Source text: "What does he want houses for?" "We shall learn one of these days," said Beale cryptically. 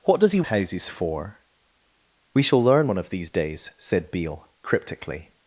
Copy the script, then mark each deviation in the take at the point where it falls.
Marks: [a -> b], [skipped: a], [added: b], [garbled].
"What does he [skipped: want] houses for?" "We shall learn one of these days," said Beale cryptically.